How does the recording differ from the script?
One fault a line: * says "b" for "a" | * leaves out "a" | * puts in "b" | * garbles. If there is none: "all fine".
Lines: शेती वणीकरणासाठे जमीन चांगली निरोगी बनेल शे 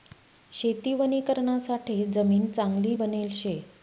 * leaves out "निरोगी"